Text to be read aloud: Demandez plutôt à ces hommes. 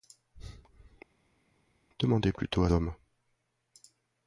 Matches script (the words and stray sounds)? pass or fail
fail